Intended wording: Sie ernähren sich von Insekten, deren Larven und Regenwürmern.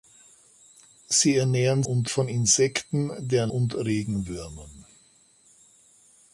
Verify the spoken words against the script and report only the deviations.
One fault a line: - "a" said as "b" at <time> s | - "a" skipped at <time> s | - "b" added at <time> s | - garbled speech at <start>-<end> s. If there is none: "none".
- "sich" said as "und" at 1.8 s
- "Larven" skipped at 3.5 s